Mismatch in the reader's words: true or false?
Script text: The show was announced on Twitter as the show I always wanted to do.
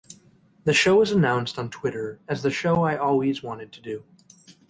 false